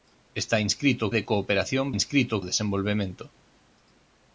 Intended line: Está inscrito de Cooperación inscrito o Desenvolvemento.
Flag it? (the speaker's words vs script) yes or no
no